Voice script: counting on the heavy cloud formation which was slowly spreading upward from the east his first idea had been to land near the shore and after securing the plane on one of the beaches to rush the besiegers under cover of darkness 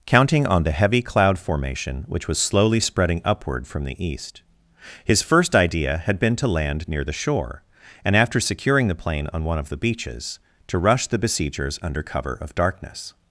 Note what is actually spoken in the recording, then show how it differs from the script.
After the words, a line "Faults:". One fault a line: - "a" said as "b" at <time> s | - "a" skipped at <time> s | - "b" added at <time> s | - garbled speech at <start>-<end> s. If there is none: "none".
counting on the heavy cloud formation which was slowly spreading upward from the east his first idea had been to land near the shore and after securing the plane on one of the beaches to rush the besiegers under cover of darkness
Faults:
none